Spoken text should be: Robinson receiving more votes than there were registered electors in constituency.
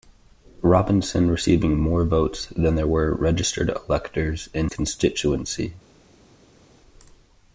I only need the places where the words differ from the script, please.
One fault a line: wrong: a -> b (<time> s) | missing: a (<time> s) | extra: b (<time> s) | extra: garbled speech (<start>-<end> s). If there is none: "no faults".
no faults